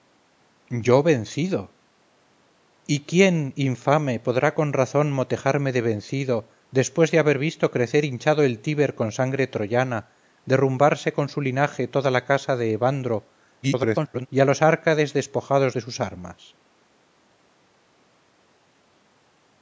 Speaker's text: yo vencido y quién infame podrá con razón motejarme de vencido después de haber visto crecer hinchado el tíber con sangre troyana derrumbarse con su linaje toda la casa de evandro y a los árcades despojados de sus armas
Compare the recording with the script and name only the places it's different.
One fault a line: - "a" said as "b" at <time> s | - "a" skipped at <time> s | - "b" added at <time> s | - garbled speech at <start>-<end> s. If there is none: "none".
- garbled speech at 13.6-14.3 s